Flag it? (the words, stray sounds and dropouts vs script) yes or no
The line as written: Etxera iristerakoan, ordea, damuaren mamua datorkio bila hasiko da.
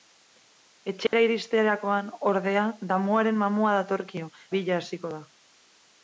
yes